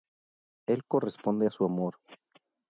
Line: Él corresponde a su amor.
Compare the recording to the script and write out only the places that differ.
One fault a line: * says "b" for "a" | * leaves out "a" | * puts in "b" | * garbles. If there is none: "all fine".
all fine